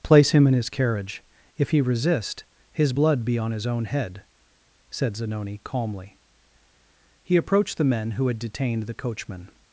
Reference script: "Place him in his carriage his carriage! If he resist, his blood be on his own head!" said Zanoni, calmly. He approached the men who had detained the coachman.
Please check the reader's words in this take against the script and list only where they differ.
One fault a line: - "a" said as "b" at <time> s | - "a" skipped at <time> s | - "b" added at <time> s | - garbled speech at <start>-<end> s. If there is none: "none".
- "his carriage" skipped at 1.2 s